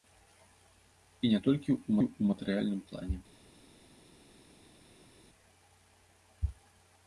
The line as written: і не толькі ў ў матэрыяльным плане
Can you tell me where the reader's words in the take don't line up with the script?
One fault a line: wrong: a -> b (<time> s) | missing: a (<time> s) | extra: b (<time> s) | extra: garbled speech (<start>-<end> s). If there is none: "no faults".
no faults